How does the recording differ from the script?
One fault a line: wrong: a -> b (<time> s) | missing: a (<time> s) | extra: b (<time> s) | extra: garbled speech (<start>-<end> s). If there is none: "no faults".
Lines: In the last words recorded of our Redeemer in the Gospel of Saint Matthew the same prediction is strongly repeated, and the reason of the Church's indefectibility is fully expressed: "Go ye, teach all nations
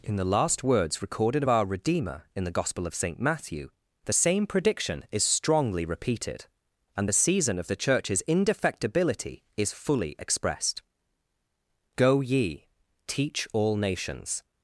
wrong: reason -> season (7.1 s)